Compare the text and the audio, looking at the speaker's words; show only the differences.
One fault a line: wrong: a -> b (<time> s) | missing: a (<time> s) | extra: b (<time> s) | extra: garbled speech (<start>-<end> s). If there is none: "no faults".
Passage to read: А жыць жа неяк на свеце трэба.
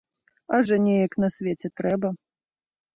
missing: жыць (0.6 s)